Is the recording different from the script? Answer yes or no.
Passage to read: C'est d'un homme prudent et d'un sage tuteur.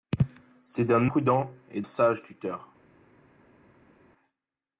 yes